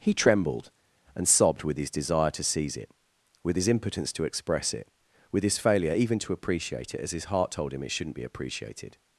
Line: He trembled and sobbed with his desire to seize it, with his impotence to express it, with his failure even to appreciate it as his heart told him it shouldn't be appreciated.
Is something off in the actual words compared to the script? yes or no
no